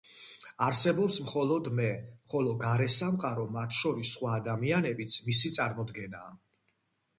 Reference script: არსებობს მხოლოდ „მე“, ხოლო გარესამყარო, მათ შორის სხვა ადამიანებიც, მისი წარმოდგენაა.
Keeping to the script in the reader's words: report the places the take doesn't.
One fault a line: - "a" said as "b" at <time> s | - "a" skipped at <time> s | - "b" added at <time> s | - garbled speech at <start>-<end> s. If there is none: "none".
none